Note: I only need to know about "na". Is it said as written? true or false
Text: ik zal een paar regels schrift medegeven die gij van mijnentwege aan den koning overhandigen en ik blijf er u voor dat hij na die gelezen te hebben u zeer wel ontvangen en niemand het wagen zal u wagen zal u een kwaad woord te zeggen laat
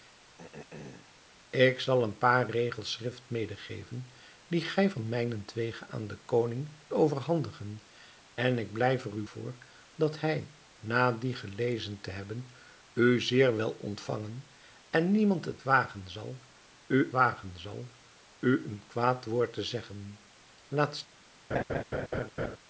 true